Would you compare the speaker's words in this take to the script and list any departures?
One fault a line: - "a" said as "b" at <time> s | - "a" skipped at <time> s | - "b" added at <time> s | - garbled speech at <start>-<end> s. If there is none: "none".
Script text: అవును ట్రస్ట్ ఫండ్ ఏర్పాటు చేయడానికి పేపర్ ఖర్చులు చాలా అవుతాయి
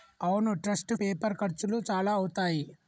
- "ఫండ్ ఏర్పాటు చేయడానికి" skipped at 0.9 s